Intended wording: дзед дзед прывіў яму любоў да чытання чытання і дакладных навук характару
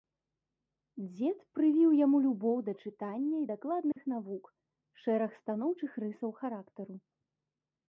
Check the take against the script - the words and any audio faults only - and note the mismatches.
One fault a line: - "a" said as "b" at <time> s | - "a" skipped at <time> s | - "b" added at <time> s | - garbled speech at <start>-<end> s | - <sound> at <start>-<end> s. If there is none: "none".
- "дзед" skipped at 1.4 s
- "чытання" skipped at 3.4 s
- dropout at 3.9-4.0 s
- "шэраг станоўчых рысаў" added at 5.0 s